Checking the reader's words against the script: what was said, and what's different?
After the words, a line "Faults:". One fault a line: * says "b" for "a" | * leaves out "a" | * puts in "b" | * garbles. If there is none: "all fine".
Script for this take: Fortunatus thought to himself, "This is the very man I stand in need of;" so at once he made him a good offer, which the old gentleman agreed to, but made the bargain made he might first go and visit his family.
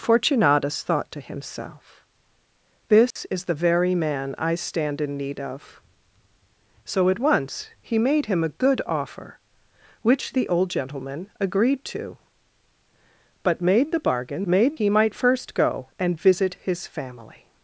Fortunatus thought to himself, "This is the very man I stand in need of;" so at once he made him a good offer, which the old gentleman agreed to, but made the bargain made he might first go and visit his family.
Faults:
all fine